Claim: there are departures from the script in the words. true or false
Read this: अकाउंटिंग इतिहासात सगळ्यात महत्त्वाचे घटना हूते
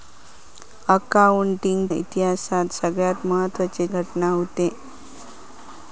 false